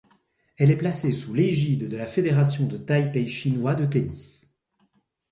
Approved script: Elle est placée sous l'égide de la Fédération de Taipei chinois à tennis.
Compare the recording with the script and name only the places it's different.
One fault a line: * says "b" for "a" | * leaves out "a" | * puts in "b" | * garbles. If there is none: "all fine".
* says "de" for "à"